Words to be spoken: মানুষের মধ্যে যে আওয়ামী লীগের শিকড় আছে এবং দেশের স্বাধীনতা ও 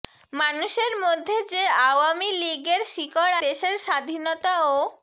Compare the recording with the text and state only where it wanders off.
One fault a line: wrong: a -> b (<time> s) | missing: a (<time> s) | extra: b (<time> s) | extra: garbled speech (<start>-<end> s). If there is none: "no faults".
missing: আছে এবং (3.4 s)